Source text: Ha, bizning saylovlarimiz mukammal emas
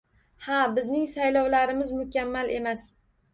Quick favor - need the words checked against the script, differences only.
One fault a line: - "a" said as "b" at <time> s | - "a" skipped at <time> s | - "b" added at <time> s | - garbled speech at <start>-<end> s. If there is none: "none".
none